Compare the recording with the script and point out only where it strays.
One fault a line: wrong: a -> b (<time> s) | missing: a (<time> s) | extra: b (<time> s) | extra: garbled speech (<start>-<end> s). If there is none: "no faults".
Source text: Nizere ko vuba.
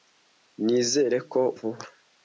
no faults